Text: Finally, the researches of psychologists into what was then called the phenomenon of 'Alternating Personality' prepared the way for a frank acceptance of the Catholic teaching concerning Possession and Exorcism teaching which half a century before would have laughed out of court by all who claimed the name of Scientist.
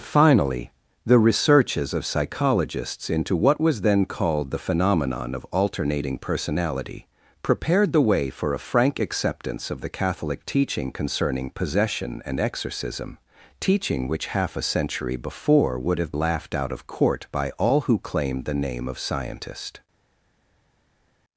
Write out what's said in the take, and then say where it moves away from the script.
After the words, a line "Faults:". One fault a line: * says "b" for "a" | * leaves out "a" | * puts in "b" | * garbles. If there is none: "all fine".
Finally, the researches of psychologists into what was then called the phenomenon of 'Alternating Personality' prepared the way for a frank acceptance of the Catholic teaching concerning Possession and Exorcism teaching which half a century before would have laughed out of court by all who claimed the name of Scientist.
Faults:
all fine